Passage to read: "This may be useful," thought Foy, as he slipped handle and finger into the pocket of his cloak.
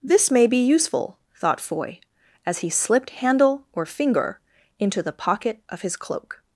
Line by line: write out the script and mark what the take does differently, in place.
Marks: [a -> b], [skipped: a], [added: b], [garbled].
"This may be useful," thought Foy, as he slipped handle [and -> or] finger into the pocket of his cloak.